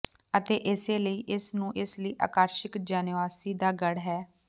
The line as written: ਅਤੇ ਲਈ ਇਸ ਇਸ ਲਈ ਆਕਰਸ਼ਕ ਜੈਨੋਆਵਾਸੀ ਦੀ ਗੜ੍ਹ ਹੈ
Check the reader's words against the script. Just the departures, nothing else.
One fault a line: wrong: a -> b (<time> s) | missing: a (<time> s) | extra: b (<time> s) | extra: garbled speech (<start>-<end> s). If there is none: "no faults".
extra: ਇਸੇ (0.7 s)
extra: ਨੂੰ (1.6 s)
wrong: ਦੀ -> ਦਾ (3.5 s)